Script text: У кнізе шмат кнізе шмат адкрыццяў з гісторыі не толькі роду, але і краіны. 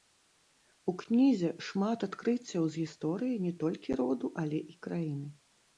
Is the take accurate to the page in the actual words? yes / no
no